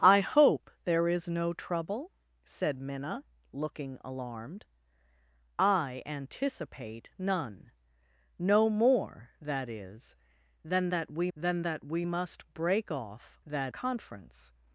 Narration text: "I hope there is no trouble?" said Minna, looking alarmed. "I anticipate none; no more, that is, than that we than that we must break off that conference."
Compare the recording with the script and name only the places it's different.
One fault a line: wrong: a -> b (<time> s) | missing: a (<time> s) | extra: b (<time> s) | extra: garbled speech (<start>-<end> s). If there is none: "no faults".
no faults